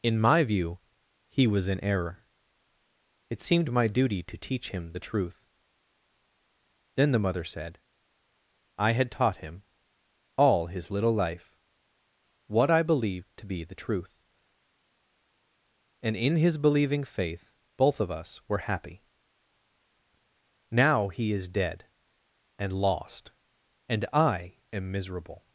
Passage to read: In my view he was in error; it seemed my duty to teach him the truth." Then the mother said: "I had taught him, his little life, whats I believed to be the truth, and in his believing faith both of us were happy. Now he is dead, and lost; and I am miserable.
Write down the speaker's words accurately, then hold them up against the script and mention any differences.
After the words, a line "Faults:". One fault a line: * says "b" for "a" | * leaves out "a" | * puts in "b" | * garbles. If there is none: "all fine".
In my view he was in error; it seemed my duty to teach him the truth." Then the mother said: "I had taught him, all his little life, what I believed to be the truth, and in his believing faith both of us were happy. Now he is dead, and lost; and I am miserable.
Faults:
* puts in "all"
* says "what" for "whats"